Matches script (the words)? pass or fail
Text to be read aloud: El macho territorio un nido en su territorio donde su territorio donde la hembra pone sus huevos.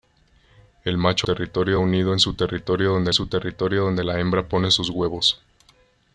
pass